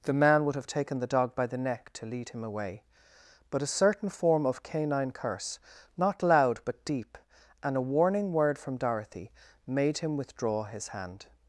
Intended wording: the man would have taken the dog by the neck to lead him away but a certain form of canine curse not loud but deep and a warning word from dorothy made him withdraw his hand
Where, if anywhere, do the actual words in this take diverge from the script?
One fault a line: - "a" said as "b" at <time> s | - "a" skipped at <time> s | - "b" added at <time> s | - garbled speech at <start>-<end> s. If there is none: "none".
none